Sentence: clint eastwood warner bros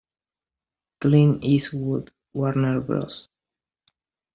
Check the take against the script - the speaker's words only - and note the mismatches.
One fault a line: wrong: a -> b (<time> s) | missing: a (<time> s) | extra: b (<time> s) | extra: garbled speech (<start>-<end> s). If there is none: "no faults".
no faults